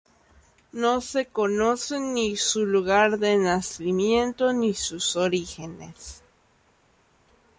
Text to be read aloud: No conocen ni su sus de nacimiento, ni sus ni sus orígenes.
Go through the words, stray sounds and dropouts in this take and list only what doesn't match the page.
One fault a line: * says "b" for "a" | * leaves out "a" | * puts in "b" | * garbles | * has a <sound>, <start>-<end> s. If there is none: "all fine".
* puts in "se"
* says "lugar" for "sus"
* leaves out "ni sus"